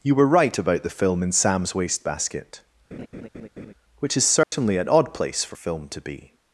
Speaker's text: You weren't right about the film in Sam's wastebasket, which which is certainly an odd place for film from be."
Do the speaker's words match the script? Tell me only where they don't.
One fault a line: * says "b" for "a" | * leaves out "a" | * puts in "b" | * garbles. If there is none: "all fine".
* says "were" for "weren't"
* leaves out "which"
* says "to" for "from"